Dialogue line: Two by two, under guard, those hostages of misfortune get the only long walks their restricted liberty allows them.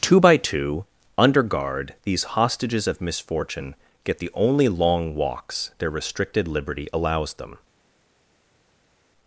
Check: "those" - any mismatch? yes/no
yes